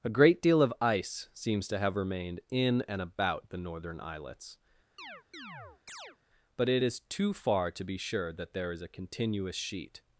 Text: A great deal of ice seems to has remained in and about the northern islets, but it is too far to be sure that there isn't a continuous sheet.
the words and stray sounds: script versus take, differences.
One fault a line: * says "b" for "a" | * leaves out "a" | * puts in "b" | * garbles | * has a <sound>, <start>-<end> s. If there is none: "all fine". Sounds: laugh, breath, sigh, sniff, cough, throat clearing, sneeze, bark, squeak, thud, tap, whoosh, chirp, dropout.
* says "have" for "has"
* has a chirp, 5.0-6.2 s
* says "is" for "isn't"